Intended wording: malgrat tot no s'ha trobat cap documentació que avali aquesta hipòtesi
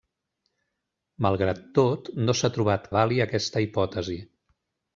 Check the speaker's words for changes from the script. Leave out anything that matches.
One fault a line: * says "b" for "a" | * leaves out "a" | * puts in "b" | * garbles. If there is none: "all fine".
* leaves out "cap documentació que"